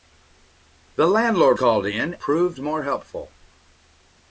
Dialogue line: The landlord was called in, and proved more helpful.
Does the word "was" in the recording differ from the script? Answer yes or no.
yes